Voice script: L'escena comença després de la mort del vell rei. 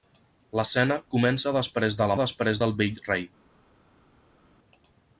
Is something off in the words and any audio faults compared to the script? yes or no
yes